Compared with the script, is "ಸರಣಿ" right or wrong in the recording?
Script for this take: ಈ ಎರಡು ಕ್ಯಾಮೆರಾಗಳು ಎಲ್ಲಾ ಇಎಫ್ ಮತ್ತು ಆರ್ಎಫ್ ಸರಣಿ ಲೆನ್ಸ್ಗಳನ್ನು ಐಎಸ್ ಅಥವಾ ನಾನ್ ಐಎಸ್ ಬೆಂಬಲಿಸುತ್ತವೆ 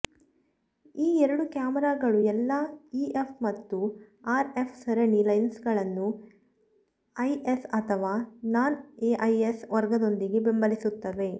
right